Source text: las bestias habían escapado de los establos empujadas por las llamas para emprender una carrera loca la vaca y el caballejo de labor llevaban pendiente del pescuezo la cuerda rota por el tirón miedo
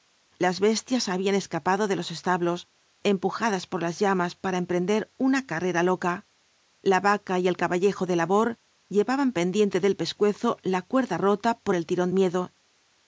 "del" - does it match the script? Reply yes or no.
yes